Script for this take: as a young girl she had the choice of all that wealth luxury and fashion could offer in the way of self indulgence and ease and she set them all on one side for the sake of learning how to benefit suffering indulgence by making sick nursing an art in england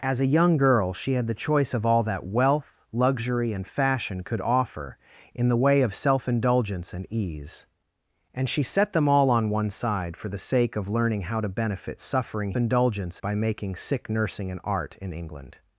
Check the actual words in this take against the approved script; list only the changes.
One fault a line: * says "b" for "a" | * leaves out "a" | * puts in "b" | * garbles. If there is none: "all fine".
all fine